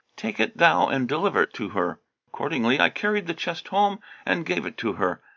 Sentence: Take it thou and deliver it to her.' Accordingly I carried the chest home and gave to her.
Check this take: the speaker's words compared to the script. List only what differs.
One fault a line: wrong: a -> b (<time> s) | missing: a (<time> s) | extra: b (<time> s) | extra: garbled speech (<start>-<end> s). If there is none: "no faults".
extra: it (4.6 s)